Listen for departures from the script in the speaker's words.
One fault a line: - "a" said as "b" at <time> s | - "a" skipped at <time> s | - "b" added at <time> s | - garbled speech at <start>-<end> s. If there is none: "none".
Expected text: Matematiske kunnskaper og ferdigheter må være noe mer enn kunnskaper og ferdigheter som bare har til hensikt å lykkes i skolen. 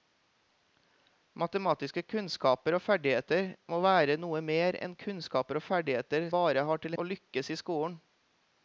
- "som" skipped at 6.3 s
- "hensikt" skipped at 7.0 s